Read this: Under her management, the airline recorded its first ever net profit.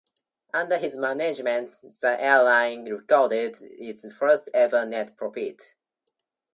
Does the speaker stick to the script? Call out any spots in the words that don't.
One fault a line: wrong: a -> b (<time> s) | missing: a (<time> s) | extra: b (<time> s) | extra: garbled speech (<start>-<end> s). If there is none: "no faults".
wrong: her -> his (0.8 s)